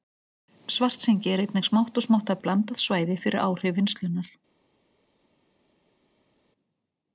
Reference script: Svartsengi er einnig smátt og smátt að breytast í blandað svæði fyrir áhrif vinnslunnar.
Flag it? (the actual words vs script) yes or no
yes